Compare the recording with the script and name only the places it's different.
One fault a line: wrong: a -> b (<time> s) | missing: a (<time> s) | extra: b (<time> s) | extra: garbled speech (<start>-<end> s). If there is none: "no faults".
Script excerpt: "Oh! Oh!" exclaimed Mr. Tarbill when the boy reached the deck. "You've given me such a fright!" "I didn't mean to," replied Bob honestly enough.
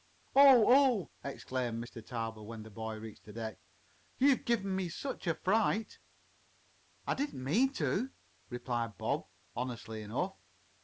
no faults